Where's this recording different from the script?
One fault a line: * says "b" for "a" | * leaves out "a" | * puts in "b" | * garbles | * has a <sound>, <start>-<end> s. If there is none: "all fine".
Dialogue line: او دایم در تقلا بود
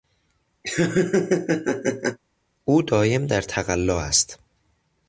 * has a laugh, 0.6-2.2 s
* says "است" for "بود"